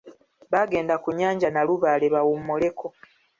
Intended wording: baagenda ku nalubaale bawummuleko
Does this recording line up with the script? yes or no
no